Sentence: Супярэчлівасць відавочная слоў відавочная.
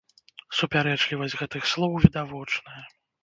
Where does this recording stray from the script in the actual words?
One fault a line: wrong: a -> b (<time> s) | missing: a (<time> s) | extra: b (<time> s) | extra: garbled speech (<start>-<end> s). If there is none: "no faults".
wrong: відавочная -> гэтых (1.4 s)